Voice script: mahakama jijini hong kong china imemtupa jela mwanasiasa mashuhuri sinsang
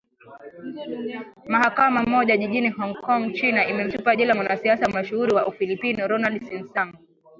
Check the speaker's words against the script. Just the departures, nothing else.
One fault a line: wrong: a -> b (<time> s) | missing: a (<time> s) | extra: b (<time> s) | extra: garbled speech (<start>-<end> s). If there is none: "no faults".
extra: moja (2.0 s)
extra: wa ufilipino ronald (5.3 s)